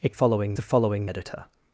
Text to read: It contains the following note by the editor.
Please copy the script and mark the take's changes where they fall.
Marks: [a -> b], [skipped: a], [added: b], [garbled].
It [contains -> following] the following [skipped: note by the] editor.